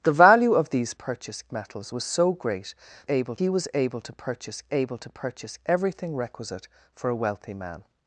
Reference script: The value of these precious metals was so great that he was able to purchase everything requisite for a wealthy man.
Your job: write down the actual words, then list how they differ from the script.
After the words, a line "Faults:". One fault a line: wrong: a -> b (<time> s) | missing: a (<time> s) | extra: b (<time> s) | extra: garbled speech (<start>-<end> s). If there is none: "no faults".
The value of these purchase metals was so great able he was able to purchase able to purchase everything requisite for a wealthy man.
Faults:
wrong: precious -> purchase (0.9 s)
wrong: that -> able (3.1 s)
extra: able to purchase (4.7 s)